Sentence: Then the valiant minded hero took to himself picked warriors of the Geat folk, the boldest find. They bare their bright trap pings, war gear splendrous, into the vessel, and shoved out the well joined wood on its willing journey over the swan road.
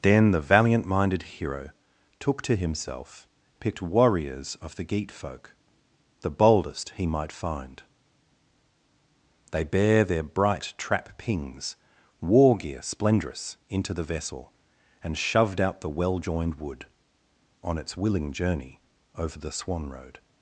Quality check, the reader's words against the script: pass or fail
fail